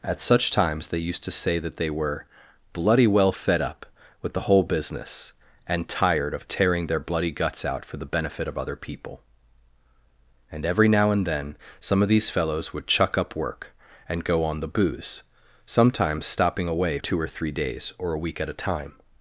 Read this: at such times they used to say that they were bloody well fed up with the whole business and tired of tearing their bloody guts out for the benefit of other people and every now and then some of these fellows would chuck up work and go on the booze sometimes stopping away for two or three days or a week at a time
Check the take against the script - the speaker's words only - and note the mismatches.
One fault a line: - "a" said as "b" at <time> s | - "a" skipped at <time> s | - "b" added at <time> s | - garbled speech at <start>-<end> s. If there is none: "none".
- "for" skipped at 17.0 s